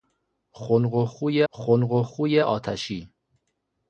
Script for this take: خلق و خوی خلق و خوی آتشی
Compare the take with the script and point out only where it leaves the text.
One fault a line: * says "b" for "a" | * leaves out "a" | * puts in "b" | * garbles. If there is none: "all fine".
all fine